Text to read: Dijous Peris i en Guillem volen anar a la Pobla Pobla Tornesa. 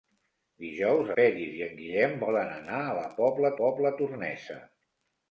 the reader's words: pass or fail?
pass